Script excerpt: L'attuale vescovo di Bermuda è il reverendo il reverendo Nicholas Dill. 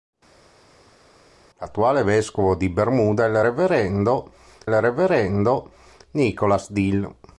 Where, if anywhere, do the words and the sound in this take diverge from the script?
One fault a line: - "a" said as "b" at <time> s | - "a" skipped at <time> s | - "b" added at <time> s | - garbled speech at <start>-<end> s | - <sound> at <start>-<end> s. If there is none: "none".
none